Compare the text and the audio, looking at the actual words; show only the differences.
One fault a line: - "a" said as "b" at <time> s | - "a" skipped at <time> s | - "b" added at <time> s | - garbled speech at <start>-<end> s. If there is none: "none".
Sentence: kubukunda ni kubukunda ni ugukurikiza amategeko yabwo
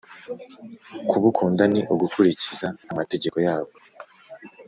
- "kubukunda ni" skipped at 1.8 s